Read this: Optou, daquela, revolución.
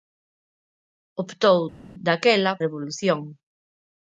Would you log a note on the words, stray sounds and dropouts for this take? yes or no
no